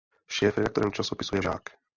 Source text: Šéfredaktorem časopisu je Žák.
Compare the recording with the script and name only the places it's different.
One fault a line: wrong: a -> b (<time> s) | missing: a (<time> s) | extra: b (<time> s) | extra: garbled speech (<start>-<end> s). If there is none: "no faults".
no faults